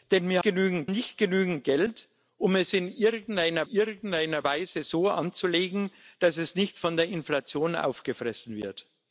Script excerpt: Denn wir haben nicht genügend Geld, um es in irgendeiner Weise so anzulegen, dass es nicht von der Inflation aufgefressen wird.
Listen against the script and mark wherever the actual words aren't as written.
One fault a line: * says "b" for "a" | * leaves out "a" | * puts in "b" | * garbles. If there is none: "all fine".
* says "genügend" for "haben"
* puts in "irgendeiner"